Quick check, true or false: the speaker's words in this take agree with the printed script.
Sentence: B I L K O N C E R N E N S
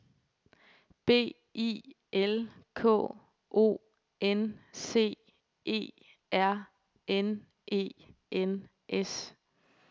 true